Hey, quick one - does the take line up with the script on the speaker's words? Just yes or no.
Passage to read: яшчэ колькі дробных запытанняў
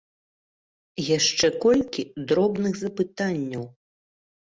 yes